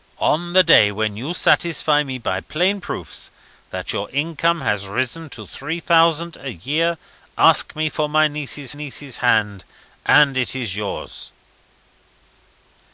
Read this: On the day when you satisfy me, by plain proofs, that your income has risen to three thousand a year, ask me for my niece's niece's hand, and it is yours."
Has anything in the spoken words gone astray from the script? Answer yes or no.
no